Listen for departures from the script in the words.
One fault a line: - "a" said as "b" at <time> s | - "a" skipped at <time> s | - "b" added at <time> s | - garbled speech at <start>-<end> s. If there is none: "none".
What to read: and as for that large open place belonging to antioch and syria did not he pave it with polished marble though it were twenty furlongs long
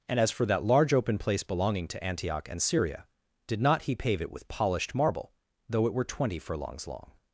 none